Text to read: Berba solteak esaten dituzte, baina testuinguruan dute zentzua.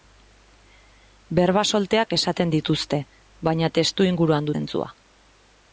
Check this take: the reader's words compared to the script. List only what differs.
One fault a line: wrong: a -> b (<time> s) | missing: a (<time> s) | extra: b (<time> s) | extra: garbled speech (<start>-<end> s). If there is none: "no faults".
missing: dute (4.5 s)